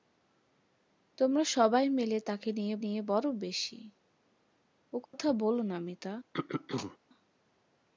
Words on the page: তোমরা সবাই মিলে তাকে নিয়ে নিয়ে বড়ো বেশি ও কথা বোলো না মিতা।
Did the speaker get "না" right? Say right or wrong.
right